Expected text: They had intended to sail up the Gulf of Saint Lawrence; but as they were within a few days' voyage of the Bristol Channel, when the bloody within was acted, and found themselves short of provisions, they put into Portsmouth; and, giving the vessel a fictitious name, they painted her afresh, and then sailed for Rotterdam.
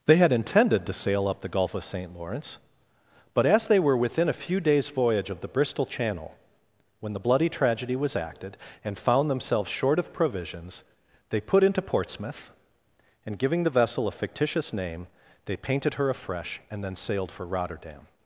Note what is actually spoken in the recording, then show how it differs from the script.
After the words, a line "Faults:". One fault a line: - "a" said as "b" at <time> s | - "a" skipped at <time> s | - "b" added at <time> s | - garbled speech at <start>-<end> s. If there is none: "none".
They had intended to sail up the Gulf of Saint Lawrence; but as they were within a few days' voyage of the Bristol Channel, when the bloody tragedy was acted, and found themselves short of provisions, they put into Portsmouth; and, giving the vessel a fictitious name, they painted her afresh, and then sailed for Rotterdam.
Faults:
- "within" said as "tragedy" at 7.5 s